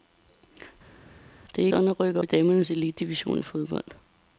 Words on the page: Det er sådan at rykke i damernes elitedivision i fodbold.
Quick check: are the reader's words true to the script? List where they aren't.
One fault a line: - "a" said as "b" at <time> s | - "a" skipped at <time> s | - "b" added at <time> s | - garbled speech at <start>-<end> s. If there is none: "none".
none